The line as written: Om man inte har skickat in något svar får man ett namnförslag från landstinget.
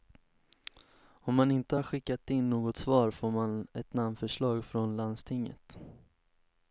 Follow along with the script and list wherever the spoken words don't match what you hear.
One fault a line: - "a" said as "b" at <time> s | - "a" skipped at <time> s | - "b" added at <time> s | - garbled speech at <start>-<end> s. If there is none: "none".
none